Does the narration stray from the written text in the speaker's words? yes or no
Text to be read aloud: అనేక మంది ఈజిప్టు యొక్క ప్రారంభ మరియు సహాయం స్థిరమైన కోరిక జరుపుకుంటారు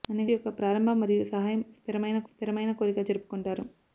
yes